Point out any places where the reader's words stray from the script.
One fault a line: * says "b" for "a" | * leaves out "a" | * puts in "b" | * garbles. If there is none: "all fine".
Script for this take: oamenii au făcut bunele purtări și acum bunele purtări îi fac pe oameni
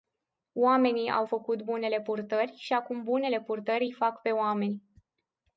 all fine